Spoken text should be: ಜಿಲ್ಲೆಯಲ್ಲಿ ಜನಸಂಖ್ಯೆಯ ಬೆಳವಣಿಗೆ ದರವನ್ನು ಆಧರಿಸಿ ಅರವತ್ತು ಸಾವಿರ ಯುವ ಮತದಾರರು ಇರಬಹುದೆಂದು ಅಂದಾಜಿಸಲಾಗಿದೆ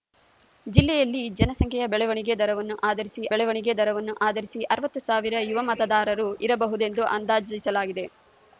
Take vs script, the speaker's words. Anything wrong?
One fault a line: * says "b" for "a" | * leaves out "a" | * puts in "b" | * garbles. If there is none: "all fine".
* puts in "ಬೆಳವಣಿಗೆ ದರವನ್ನು ಆಧರಿಸಿ"